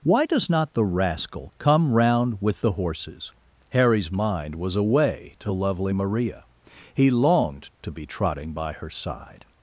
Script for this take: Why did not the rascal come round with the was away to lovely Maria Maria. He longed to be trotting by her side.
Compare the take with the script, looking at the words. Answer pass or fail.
fail